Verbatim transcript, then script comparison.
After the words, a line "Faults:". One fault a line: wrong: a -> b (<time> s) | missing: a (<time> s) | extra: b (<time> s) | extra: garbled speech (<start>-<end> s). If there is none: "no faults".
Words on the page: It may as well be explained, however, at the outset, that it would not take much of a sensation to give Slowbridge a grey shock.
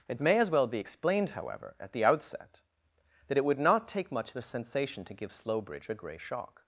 It may as well be explained, however, at the outset, that it would not take much of a sensation to give Slowbridge a grey shock.
Faults:
no faults